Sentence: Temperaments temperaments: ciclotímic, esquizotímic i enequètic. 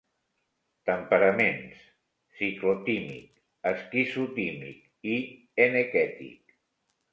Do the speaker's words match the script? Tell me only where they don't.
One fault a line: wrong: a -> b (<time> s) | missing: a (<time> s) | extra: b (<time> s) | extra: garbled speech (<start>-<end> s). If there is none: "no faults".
missing: temperaments (1.8 s)